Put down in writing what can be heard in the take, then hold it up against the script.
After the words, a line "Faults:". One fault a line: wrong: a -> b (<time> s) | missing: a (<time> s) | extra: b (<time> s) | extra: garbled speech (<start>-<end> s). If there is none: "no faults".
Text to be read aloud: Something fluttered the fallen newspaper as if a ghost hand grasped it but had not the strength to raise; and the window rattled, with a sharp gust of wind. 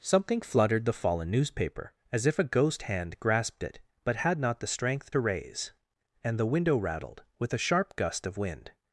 Something fluttered the fallen newspaper as if a ghost hand grasped it but had not the strength to raise; and the window rattled, with a sharp gust of wind.
Faults:
no faults